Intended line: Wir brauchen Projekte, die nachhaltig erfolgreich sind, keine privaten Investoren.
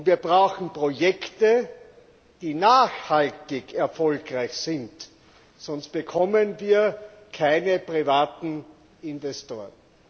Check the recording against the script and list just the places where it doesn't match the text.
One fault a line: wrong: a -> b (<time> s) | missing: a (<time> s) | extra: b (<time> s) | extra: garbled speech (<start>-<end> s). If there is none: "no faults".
extra: sonst bekommen wir (5.6 s)